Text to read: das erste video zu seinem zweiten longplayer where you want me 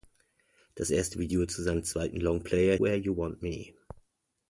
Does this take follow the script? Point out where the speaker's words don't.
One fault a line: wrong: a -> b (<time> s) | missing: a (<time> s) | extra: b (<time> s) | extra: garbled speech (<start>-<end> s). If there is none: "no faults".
no faults